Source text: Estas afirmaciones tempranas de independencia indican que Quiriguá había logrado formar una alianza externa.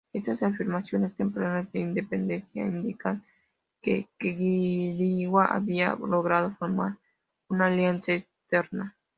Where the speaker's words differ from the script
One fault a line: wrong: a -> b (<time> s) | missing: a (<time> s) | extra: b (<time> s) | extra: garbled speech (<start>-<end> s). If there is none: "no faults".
no faults